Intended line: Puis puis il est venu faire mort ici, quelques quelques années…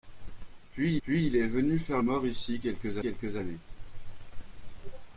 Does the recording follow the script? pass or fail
pass